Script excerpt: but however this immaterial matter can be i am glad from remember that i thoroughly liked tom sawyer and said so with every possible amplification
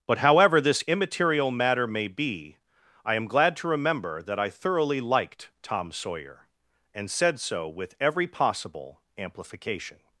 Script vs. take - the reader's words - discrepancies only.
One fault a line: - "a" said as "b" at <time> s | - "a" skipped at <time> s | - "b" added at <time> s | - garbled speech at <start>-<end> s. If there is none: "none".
- "can" said as "may" at 1.9 s
- "from" said as "to" at 3.6 s